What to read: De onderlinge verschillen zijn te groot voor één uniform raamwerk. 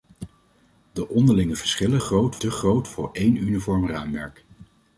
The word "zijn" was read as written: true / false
false